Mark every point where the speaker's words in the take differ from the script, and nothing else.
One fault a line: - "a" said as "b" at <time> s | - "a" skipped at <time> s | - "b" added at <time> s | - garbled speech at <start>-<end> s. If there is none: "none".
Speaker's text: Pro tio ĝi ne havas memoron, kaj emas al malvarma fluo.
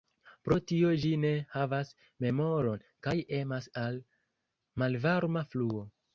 none